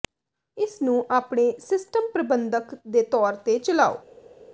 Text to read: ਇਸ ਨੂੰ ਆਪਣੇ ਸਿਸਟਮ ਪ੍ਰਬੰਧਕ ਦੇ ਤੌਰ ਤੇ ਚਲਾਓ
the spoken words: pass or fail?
pass